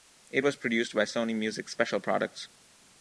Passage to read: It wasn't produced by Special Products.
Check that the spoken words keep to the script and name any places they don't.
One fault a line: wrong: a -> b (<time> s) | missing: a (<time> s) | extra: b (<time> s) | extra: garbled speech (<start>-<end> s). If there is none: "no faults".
wrong: wasn't -> was (0.4 s)
extra: Sony Music (1.0 s)